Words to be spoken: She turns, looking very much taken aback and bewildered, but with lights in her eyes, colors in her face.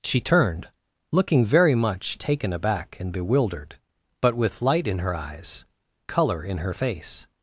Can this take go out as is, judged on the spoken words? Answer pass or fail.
fail